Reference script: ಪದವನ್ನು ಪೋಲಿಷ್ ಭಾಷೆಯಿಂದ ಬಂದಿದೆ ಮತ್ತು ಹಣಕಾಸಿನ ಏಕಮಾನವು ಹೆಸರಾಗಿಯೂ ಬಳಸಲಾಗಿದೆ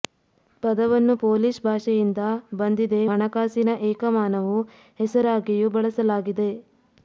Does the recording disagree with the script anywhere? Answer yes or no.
yes